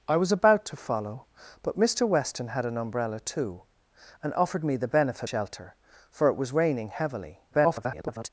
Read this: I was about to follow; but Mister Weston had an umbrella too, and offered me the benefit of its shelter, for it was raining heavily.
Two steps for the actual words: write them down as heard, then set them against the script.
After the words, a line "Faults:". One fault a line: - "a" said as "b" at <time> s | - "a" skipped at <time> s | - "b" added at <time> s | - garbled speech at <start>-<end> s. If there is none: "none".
I was about to follow; but Mister Weston had an umbrella too, and offered me the benefit shelter, for it was raining heavily. [garbled]
Faults:
- "of its" skipped at 5.3 s
- garbled speech at 7.5-8.3 s